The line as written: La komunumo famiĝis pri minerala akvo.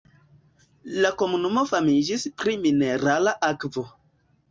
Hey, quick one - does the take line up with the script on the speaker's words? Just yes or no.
yes